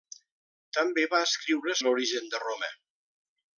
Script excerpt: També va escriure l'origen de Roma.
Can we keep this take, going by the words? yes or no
yes